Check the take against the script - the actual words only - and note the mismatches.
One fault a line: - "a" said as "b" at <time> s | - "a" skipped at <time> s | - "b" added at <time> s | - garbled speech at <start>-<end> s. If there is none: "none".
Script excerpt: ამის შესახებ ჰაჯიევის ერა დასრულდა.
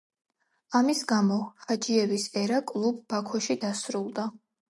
- "შესახებ" said as "გამო" at 1.1 s
- "კლუბ ბაქოში" added at 2.7 s